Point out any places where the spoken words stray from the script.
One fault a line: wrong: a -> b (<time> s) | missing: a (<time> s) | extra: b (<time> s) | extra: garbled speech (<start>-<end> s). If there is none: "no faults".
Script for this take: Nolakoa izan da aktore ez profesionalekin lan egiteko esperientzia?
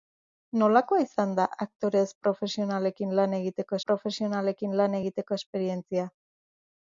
extra: profesionalekin lan egiteko (3.9 s)